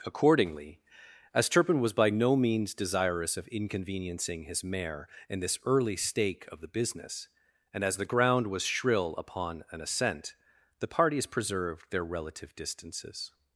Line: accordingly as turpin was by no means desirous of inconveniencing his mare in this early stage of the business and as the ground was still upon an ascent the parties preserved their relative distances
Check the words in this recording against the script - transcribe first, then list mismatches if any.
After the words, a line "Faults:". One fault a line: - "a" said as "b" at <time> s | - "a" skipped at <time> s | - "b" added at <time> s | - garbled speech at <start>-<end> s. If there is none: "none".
accordingly as turpin was by no means desirous of inconveniencing his mare in this early stake of the business and as the ground was shrill upon an ascent the parties preserved their relative distances
Faults:
- "stage" said as "stake" at 6.0 s
- "still" said as "shrill" at 8.6 s